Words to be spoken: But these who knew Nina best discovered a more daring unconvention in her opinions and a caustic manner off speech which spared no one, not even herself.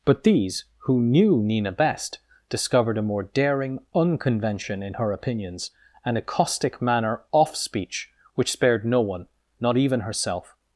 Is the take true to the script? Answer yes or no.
yes